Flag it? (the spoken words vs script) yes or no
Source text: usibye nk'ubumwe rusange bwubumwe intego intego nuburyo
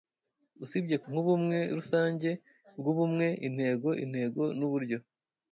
no